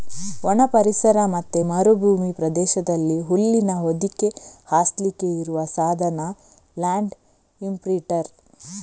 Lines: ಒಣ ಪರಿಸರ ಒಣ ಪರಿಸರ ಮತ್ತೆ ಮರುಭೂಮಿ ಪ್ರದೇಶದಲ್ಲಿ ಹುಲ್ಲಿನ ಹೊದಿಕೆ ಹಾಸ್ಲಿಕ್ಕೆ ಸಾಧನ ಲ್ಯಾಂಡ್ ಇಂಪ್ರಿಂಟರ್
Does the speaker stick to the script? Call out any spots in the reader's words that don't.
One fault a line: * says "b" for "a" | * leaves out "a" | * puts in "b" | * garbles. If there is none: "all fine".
* leaves out "ಒಣ ಪರಿಸರ"
* puts in "ಇರುವ"